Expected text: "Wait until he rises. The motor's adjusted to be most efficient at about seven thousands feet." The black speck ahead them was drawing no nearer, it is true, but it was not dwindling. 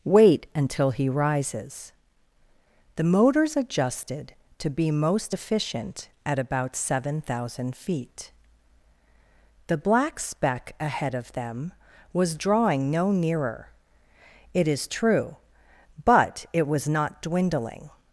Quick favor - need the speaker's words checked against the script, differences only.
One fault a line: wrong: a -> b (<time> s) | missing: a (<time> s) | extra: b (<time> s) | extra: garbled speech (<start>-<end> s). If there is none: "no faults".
wrong: thousands -> thousand (7.2 s)
extra: of (11.1 s)